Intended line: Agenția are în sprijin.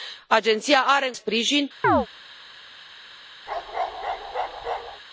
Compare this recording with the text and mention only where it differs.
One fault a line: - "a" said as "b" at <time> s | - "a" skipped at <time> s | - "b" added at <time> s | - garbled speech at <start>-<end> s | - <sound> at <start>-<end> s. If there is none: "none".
- chirp at 1.8-2.1 s
- bark at 3.5-5.0 s